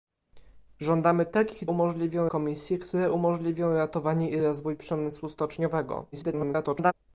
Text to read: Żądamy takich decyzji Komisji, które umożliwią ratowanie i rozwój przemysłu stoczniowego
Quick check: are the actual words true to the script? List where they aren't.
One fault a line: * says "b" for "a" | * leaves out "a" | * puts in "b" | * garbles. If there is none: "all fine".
* says "umożliwią" for "decyzji"
* garbles